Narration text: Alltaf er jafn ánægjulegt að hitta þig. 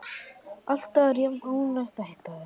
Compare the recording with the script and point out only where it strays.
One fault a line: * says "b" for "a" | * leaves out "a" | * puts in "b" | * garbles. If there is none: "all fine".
all fine